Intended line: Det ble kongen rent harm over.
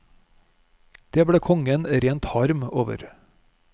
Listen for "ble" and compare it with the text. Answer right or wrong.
right